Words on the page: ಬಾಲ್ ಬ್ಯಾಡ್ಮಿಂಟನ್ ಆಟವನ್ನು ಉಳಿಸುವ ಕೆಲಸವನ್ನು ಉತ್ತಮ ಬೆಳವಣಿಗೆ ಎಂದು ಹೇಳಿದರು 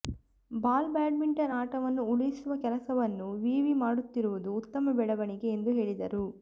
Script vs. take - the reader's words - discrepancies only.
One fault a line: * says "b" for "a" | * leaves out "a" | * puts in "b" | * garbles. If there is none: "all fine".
* puts in "ವಿವಿ ಮಾಡುತ್ತಿರುವುದು"